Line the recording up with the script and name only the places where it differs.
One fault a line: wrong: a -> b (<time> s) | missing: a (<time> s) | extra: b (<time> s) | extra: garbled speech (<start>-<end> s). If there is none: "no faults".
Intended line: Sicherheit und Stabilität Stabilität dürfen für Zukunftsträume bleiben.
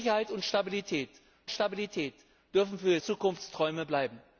no faults